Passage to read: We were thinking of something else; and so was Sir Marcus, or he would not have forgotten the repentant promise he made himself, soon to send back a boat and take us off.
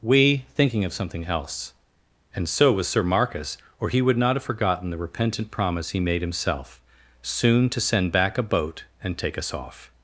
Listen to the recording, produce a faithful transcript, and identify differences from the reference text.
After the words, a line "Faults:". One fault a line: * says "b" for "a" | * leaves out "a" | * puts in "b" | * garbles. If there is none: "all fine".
We thinking of something else; and so was Sir Marcus, or he would not have forgotten the repentant promise he made himself, soon to send back a boat and take us off.
Faults:
* leaves out "were"